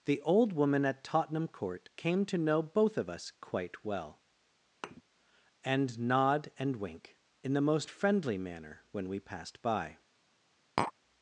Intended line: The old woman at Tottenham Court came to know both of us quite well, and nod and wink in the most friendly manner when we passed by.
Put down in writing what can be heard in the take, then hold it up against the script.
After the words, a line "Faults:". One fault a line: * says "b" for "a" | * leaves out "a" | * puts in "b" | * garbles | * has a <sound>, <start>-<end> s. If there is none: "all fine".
The old woman at Tottenham Court came to know both of us quite well, and nod and wink in the most friendly manner when we passed by.
Faults:
* has a thud, 4.8-5.0 s
* has a tap, 10.8-10.9 s